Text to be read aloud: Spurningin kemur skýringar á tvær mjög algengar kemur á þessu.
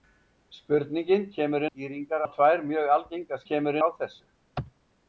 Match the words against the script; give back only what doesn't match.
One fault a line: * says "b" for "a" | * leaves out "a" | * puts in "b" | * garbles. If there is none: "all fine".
all fine